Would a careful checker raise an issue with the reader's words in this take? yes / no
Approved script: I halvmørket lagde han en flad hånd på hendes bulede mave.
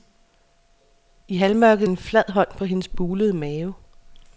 yes